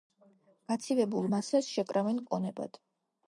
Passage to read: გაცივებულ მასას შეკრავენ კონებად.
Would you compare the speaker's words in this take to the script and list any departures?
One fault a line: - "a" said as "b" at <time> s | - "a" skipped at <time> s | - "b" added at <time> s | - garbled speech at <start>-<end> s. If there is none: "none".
none